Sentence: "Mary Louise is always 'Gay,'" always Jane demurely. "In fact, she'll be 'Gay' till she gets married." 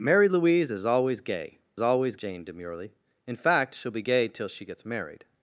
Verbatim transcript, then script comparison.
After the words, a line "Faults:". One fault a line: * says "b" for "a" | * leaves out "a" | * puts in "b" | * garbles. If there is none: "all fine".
"Mary Louise is always 'Gay,'" always Jane demurely. "In fact, she'll be 'Gay' till she gets married."
Faults:
all fine